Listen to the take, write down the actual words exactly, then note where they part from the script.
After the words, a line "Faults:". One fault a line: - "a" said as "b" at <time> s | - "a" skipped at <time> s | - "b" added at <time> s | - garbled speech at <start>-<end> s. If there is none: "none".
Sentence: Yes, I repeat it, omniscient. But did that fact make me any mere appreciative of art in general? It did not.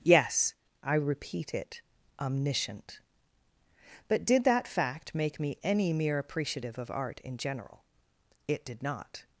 Yes, I repeat it, omniscient. But did that fact make me any mere appreciative of art in general? It did not.
Faults:
none